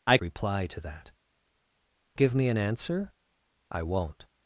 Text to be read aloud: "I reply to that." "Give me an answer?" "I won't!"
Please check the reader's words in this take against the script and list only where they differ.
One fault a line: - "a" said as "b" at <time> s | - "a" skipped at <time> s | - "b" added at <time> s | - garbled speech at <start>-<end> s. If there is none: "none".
none